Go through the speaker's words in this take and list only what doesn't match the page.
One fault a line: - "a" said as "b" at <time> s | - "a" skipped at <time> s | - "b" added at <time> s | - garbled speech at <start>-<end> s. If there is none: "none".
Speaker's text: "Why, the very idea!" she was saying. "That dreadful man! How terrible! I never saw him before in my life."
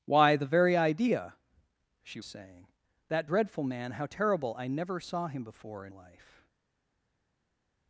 - "was" skipped at 2.2 s
- "my" skipped at 5.9 s